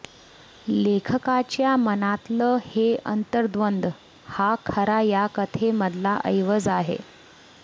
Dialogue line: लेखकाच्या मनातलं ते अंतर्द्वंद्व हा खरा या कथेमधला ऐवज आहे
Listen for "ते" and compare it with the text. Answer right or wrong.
wrong